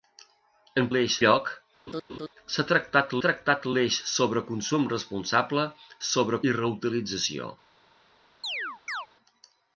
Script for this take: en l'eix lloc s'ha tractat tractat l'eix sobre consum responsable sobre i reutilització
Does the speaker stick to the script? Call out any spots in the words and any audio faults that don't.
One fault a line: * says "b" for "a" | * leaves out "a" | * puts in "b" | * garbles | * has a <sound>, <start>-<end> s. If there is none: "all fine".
* has a laugh, 1.9-2.3 s
* has a chirp, 8.4-9.1 s